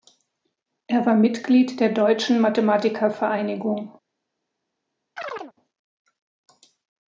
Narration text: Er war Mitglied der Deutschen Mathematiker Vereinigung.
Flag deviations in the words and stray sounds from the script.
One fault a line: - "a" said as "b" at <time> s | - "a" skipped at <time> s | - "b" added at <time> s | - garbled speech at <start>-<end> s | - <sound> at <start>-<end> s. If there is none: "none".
- chirp at 5.2-5.5 s